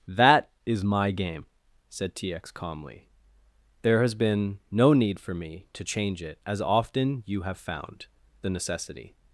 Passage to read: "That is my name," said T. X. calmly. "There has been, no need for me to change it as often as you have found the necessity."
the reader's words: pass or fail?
fail